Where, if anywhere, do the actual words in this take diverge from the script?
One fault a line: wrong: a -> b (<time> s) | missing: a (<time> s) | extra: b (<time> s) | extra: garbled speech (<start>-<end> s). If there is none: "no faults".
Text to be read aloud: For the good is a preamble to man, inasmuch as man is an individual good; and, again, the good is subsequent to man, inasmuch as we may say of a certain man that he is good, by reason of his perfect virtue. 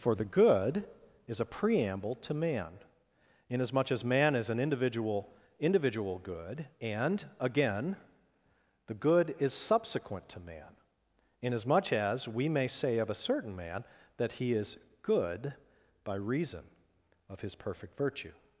extra: individual (5.6 s)